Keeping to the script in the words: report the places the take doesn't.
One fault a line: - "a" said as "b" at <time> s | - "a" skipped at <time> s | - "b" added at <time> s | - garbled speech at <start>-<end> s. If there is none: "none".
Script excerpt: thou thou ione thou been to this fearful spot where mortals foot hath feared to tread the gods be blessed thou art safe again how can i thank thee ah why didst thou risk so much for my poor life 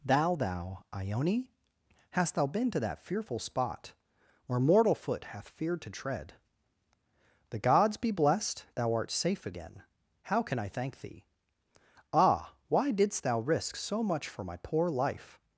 - "hast" added at 2.1 s
- "this" said as "that" at 2.8 s
- "mortals" said as "mortal" at 4.6 s